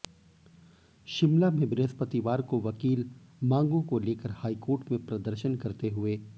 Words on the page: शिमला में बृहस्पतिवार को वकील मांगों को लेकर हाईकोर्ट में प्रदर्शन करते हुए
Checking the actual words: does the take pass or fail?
pass